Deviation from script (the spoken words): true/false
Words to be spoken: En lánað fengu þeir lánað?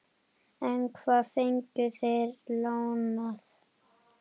true